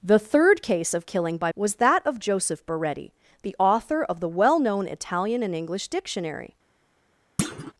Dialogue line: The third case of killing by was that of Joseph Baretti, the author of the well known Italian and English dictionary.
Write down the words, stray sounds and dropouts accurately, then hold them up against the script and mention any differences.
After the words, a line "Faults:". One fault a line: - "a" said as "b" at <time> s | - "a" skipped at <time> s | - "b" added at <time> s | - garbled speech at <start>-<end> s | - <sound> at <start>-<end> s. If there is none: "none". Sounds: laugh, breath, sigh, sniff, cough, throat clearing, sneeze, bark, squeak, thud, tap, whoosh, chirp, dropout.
The third case of killing by was that of Joseph Baretti, the author of the well known Italian and English dictionary.
Faults:
- thud at 7.4-7.7 s